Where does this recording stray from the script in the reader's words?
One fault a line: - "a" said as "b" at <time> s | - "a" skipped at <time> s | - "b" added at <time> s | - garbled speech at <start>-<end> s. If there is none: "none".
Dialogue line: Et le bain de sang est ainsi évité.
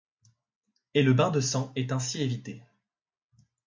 none